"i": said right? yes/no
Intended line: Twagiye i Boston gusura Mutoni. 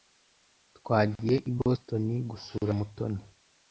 yes